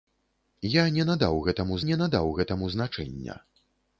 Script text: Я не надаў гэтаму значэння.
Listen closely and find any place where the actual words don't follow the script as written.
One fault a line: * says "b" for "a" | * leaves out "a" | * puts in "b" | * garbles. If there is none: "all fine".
* puts in "не надаў гэтаму"